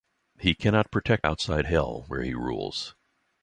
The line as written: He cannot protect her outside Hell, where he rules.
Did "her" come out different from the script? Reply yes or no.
yes